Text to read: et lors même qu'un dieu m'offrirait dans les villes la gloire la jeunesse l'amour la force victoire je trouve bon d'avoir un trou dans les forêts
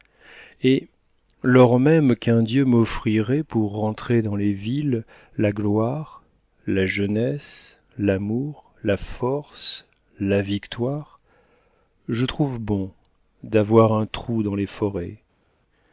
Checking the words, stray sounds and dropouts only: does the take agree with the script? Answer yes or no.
no